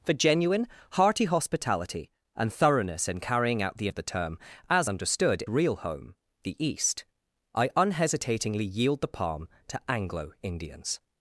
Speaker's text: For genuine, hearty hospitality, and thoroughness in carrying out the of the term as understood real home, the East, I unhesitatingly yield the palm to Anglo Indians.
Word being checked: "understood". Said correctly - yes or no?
yes